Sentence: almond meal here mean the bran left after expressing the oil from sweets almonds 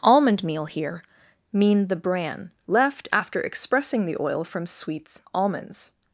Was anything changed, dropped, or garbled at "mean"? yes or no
no